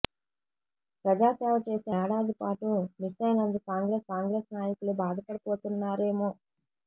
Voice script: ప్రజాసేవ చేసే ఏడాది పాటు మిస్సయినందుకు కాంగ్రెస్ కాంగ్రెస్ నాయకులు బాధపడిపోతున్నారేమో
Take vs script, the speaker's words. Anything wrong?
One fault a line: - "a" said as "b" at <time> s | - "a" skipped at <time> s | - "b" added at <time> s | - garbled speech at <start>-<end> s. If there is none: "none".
none